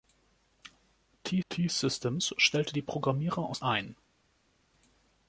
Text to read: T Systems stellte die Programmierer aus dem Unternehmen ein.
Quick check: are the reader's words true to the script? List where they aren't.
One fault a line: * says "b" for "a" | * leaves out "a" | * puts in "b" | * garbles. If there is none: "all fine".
* puts in "t"
* leaves out "dem Unternehmen"